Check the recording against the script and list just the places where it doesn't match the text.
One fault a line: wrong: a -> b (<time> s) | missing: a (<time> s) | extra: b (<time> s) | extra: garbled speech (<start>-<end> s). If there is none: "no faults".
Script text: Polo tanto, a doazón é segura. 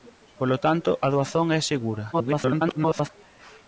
extra: garbled speech (2.1-3.1 s)